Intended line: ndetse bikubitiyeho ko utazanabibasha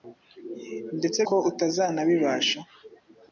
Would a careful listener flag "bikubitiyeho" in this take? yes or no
yes